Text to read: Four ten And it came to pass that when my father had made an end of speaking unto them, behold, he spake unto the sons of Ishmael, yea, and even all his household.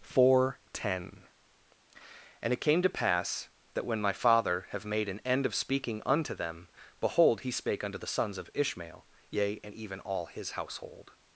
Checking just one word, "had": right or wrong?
wrong